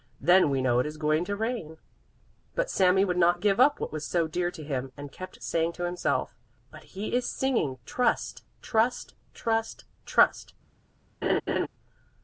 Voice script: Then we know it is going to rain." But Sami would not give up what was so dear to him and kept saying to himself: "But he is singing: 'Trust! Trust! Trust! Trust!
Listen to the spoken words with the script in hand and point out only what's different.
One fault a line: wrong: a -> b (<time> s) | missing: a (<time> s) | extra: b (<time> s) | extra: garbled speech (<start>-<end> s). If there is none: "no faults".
no faults